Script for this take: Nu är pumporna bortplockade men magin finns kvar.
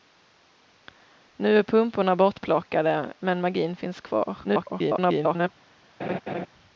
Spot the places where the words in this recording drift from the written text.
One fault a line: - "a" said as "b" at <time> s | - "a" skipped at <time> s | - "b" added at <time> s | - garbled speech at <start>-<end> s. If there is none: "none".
- garbled speech at 4.4-5.5 s